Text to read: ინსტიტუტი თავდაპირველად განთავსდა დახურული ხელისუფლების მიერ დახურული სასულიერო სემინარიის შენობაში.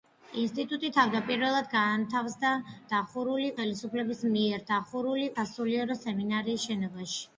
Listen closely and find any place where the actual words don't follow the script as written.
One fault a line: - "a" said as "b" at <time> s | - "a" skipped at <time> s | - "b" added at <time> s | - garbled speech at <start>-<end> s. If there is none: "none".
none